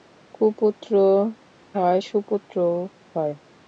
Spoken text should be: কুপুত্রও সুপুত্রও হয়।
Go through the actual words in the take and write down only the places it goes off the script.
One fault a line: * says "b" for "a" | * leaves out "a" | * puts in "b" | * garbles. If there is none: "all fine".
* puts in "হয়"